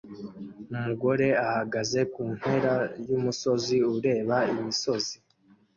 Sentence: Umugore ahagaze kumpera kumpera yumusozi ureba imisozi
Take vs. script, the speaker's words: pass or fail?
fail